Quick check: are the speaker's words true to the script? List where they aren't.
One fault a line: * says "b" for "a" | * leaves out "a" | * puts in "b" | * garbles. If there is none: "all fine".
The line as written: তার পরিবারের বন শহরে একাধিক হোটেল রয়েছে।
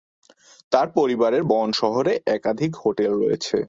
all fine